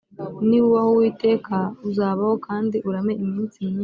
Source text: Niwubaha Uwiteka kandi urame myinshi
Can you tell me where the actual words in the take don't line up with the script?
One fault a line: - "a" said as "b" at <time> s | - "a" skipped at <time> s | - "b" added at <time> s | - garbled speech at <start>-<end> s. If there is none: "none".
- "uzabaho" added at 1.9 s
- "iminsi" added at 3.2 s